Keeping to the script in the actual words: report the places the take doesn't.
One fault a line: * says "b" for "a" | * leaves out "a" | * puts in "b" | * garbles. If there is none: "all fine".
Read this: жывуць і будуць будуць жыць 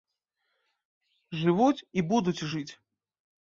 * leaves out "будуць"